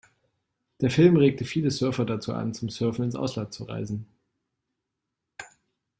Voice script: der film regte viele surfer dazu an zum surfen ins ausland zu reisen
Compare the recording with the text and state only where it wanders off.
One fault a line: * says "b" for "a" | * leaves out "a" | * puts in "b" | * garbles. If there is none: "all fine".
all fine